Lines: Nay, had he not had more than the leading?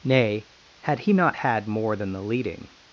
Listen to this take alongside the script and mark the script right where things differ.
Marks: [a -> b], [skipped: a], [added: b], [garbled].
Nay, had he not had more than the leading?